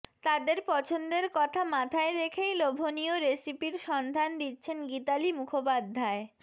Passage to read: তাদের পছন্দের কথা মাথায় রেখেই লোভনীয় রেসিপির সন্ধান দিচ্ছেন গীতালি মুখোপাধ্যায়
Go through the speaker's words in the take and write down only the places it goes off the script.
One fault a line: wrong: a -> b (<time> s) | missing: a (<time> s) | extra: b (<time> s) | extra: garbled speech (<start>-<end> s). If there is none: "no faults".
no faults